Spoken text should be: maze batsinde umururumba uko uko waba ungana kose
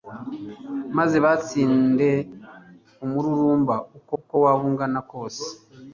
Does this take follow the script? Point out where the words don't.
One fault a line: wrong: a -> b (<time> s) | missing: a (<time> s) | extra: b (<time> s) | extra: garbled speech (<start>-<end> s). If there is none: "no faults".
no faults